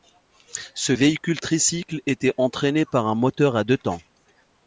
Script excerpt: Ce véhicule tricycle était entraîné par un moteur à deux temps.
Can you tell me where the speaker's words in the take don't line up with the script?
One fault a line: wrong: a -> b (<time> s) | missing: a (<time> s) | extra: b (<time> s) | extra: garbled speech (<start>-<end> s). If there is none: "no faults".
no faults